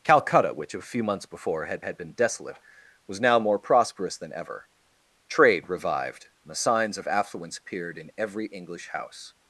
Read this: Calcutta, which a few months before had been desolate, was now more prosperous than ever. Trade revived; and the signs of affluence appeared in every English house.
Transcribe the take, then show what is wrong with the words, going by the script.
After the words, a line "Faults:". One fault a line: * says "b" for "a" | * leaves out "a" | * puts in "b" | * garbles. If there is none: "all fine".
Calcutta, which a few months before had had been desolate, was now more prosperous than ever. Trade revived; and the signs of affluence appeared in every English house.
Faults:
* puts in "had"